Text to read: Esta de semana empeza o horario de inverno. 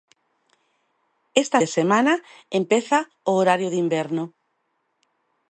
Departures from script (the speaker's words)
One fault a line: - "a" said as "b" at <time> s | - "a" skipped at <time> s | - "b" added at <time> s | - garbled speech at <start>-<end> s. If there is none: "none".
none